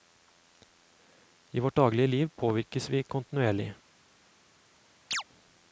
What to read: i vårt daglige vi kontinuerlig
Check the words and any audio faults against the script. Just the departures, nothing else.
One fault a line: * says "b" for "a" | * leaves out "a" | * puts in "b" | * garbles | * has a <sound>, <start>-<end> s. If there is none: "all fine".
* puts in "liv påvirkes"
* has a chirp, 5.1-5.2 s